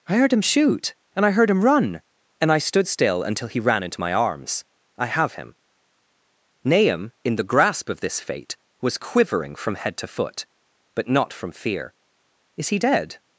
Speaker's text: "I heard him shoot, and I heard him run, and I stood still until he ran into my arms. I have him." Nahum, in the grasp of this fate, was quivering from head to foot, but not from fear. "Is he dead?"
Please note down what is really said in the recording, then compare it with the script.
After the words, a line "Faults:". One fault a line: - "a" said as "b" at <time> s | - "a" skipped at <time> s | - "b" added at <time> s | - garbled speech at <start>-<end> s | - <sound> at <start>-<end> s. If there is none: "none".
"I heard him shoot, and I heard him run, and I stood still until he ran into my arms. I have him." Nahum, in the grasp of this fate, was quivering from head to foot, but not from fear. "Is he dead?"
Faults:
none